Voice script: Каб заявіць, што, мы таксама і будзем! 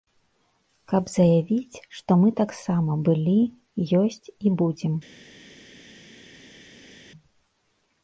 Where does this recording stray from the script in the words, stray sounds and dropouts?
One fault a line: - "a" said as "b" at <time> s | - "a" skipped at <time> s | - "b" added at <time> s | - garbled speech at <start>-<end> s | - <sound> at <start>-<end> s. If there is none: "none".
- "былі ёсць" added at 3.1 s